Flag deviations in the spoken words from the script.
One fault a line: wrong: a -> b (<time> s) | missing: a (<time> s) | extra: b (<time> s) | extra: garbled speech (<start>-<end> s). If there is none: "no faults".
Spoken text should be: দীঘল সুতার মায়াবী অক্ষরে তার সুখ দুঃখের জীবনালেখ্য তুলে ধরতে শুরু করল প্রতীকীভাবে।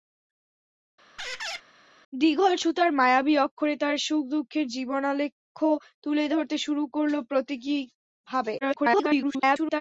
extra: garbled speech (8.6-9.8 s)